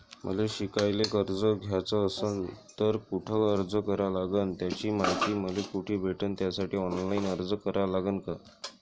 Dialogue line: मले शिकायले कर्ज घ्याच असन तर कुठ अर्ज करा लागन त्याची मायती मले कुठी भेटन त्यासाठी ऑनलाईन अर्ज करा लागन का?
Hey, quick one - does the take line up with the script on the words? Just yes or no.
yes